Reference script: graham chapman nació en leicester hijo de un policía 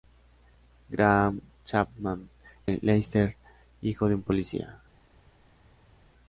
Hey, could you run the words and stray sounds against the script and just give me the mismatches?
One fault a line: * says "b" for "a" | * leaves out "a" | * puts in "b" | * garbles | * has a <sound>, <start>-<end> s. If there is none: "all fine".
* leaves out "nació"